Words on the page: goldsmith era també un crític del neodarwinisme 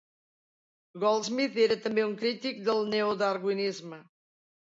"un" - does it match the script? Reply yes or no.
yes